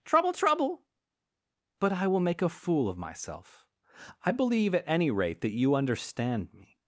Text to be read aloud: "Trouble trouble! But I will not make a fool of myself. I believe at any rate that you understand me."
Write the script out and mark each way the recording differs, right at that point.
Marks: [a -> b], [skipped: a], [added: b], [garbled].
"Trouble trouble! But I will [skipped: not] make a fool of myself. I believe at any rate that you understand me."